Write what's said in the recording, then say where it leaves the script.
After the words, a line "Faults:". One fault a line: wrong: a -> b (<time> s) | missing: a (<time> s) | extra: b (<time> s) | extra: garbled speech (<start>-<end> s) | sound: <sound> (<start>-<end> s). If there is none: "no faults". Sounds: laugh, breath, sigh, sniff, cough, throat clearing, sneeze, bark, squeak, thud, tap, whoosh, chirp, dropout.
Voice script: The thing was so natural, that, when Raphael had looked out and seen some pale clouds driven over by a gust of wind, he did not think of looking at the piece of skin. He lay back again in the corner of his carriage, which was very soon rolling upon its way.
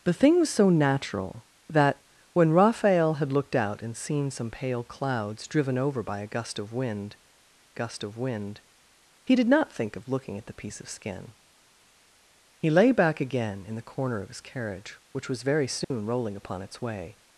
The thing was so natural, that, when Raphael had looked out and seen some pale clouds driven over by a gust of wind gust of wind, he did not think of looking at the piece of skin. He lay back again in the corner of his carriage, which was very soon rolling upon its way.
Faults:
extra: gust of wind (7.7 s)
sound: dropout (15.8-15.9 s)